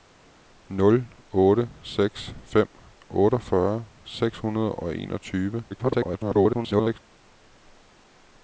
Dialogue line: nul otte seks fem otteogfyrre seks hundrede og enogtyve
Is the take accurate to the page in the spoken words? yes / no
no